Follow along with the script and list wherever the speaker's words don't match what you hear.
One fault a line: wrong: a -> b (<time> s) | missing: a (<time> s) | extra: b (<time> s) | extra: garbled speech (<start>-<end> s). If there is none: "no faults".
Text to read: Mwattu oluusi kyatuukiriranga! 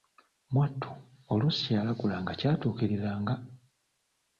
extra: kyeyalagulanga (1.7 s)